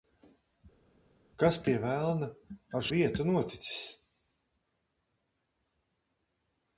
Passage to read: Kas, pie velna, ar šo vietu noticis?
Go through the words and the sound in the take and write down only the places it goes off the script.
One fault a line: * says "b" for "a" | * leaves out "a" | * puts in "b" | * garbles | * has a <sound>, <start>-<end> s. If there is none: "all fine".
* leaves out "šo"